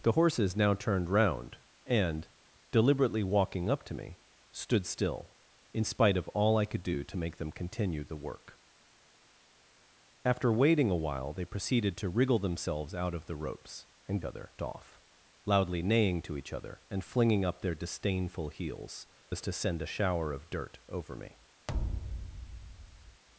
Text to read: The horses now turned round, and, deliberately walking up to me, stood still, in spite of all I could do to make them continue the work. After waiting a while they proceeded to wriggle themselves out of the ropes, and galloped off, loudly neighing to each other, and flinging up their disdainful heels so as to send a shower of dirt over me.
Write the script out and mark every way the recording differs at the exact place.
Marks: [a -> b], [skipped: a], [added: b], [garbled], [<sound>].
The horses now turned round, and, deliberately walking up to me, stood still, in spite of all I could do to make them continue the work. After waiting a while they proceeded to wriggle themselves out of the ropes, and [galloped -> other] off, loudly neighing to each other, and flinging up their disdainful heels [skipped: so] as to send a shower of dirt over me. [thud]